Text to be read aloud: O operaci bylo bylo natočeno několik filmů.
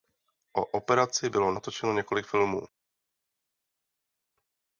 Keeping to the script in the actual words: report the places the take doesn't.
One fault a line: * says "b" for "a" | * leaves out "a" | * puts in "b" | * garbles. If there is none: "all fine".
* leaves out "bylo"